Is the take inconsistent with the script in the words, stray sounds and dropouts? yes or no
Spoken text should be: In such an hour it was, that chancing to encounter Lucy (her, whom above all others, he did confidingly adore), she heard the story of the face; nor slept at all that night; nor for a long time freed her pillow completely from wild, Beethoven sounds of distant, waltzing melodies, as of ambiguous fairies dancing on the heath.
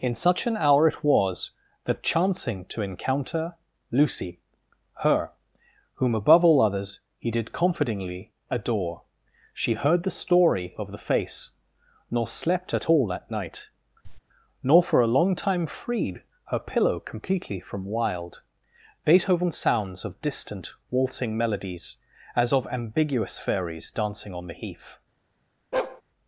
yes